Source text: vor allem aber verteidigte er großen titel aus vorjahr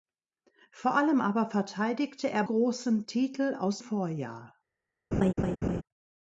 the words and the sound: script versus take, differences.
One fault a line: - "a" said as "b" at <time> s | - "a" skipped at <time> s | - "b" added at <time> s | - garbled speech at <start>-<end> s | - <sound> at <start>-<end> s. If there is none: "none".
- laugh at 5.1-5.8 s